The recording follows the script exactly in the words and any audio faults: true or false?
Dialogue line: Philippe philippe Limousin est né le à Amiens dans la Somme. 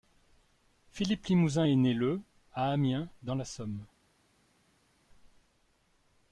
false